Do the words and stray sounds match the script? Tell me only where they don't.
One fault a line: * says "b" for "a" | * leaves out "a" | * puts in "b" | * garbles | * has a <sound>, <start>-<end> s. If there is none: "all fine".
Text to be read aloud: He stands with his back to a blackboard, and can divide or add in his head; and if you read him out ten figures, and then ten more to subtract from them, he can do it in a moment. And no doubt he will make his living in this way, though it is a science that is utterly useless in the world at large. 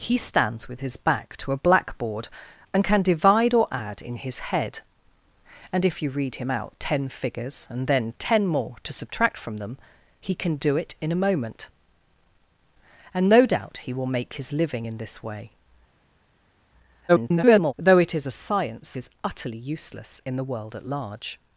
* garbles
* leaves out "that"